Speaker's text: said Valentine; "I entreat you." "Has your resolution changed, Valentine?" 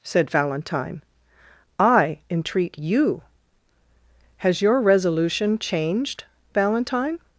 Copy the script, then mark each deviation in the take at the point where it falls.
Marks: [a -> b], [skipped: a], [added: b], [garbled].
said Valentine; "I entreat you." "Has your resolution changed, Valentine?"